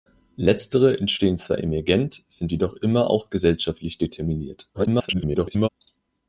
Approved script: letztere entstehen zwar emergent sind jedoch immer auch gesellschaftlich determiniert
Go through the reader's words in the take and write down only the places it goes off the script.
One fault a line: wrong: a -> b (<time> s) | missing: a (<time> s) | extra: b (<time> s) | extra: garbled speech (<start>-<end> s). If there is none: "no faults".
extra: garbled speech (4.7-5.7 s)